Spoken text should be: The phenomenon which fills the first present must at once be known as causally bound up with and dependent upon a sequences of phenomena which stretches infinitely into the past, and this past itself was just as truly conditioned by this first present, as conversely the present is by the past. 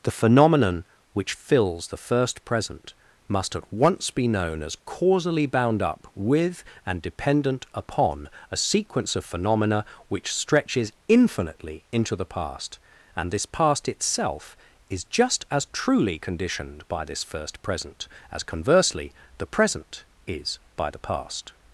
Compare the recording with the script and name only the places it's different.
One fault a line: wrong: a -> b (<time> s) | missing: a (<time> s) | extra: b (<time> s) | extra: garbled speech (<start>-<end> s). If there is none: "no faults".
wrong: sequences -> sequence (8.6 s)
wrong: was -> is (14.9 s)